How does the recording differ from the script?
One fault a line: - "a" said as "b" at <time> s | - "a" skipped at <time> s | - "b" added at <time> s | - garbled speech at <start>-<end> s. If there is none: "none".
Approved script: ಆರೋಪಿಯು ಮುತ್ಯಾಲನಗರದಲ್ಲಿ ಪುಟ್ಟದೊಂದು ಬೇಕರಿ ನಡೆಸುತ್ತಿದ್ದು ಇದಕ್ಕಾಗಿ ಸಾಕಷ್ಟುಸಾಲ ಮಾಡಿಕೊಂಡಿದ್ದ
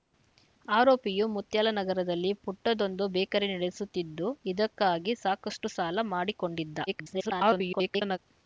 - garbled speech at 6.9-8.2 s